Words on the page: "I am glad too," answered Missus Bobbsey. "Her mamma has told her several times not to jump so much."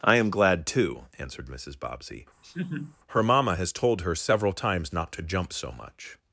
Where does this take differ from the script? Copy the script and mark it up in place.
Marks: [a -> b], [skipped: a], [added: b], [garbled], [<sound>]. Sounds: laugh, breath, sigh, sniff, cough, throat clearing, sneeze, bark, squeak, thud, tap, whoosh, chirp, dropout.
"I am glad too," answered Missus Bobbsey. [laugh] "Her mamma has told her several times not to jump so much."